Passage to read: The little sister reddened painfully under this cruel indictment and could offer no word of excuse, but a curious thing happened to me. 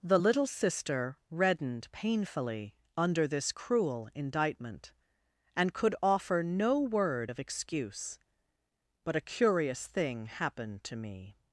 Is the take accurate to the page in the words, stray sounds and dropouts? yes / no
yes